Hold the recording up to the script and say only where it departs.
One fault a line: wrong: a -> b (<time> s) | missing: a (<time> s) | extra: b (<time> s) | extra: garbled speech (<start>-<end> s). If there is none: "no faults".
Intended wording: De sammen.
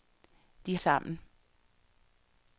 no faults